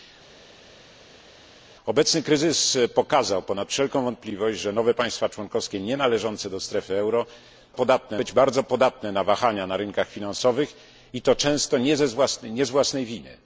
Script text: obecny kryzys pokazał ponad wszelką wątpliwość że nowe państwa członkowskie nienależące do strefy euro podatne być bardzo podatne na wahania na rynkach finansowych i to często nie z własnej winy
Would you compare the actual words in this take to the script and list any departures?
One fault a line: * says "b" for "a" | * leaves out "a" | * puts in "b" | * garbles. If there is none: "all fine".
all fine